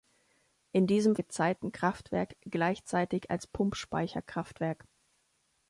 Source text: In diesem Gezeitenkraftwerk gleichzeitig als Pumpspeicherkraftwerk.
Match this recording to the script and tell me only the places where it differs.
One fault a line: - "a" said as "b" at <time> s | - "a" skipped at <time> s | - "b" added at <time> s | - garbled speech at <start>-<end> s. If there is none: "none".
none